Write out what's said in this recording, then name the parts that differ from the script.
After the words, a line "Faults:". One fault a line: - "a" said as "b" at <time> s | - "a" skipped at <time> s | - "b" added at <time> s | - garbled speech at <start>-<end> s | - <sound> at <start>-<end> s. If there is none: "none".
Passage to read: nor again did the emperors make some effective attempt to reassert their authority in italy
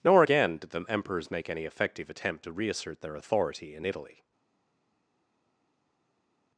nor again did the emperors make any effective attempt to reassert their authority in italy
Faults:
- "some" said as "any" at 1.5 s